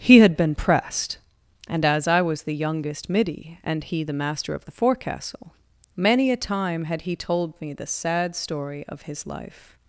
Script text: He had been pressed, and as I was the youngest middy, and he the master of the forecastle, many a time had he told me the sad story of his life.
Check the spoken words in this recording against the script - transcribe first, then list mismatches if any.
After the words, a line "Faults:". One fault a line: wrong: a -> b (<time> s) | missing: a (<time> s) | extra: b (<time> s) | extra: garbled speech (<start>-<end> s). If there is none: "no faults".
He had been pressed, and as I was the youngest middy, and he the master of the forecastle, many a time had he told me the sad story of his life.
Faults:
no faults